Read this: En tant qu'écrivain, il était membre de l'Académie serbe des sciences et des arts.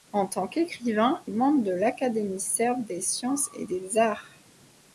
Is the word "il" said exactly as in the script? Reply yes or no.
no